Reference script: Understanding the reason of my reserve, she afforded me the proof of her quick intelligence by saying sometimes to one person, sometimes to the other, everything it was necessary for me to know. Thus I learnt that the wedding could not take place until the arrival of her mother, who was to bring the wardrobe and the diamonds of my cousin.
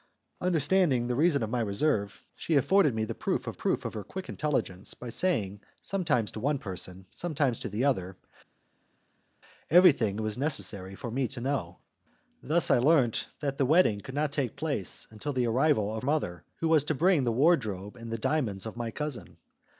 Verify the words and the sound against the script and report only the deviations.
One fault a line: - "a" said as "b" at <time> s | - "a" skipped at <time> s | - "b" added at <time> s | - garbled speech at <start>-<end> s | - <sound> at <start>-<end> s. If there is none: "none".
- "proof of" added at 3.5 s
- "her" skipped at 16.1 s